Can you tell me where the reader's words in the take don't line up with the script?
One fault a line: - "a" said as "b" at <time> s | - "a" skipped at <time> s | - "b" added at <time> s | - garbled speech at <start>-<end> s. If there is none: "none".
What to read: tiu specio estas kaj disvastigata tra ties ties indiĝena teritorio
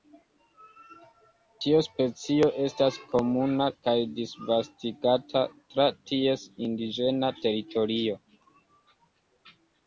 - "komuna" added at 3.2 s
- "ties" skipped at 6.5 s